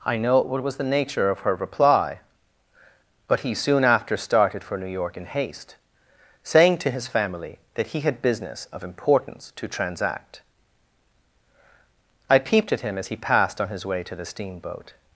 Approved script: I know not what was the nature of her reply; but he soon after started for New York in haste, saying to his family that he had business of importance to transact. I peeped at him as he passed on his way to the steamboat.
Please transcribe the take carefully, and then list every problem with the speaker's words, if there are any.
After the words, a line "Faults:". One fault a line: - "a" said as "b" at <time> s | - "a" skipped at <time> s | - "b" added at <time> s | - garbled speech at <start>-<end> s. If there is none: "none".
I know what was the nature of her reply; but he soon after started for New York in haste, saying to his family that he had business of importance to transact. I peeped at him as he passed on his way to the steamboat.
Faults:
- "not" skipped at 0.4 s